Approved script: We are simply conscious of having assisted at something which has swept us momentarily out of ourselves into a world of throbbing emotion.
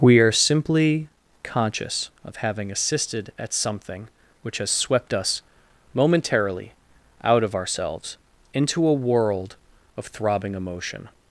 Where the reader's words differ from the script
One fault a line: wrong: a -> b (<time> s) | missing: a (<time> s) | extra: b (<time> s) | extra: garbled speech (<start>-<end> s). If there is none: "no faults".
no faults